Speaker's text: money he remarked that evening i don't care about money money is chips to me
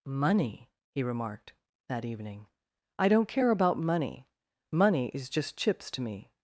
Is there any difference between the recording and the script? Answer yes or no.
yes